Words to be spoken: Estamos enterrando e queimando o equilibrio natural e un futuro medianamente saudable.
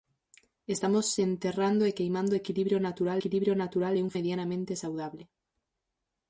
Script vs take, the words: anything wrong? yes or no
yes